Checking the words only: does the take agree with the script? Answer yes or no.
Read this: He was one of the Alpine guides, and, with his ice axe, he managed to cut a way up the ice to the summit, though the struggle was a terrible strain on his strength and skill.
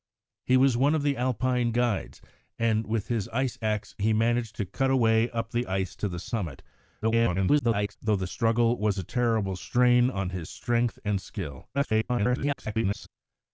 no